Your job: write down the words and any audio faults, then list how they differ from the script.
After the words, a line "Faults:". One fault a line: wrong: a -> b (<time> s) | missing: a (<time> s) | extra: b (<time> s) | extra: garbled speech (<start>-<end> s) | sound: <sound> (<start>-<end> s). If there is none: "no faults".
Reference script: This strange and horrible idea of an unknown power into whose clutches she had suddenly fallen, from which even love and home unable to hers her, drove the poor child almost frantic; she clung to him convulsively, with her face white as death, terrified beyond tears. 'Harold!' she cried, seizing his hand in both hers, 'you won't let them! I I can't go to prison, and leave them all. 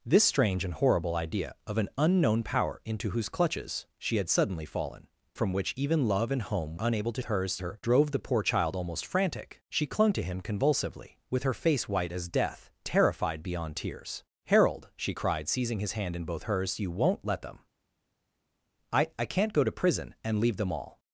This strange and horrible idea of an unknown power into whose clutches she had suddenly fallen, from which even love and home unable to hers her, drove the poor child almost frantic; she clung to him convulsively, with her face white as death, terrified beyond tears. 'Harold!' she cried, seizing his hand in both hers, 'you won't let them! I I can't go to prison, and leave them all.
Faults:
no faults